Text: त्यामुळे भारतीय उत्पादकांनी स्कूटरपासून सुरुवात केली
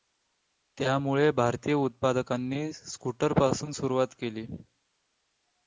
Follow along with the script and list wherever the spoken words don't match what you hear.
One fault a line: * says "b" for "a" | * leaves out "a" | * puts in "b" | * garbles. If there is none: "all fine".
all fine